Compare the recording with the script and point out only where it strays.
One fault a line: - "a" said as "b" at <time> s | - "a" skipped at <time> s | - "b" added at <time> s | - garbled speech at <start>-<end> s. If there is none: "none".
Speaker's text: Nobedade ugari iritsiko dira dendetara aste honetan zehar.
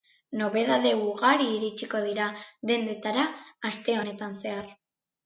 none